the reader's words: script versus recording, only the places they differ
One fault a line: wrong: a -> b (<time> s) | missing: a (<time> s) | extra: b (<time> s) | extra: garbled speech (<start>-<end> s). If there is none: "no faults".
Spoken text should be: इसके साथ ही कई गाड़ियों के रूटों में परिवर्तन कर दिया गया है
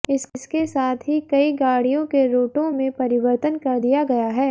no faults